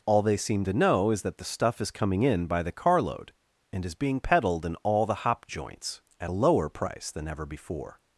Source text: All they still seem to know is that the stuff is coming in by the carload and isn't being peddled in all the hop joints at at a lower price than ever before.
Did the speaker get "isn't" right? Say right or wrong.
wrong